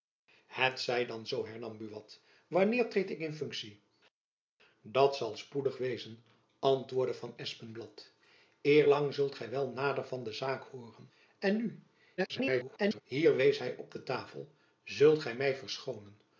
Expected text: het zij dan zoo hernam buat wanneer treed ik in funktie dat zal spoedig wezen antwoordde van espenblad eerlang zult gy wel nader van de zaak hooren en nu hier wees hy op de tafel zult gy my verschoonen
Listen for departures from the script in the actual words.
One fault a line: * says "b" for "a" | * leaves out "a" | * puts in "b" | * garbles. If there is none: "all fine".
* garbles